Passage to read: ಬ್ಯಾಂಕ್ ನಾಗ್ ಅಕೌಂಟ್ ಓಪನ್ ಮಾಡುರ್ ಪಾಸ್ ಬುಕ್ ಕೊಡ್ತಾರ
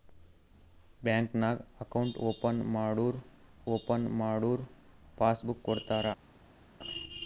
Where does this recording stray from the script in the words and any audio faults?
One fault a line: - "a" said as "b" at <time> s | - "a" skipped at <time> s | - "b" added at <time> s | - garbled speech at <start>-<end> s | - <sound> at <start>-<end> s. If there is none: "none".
- "ಓಪನ್ ಮಾಡುರ್" added at 3.7 s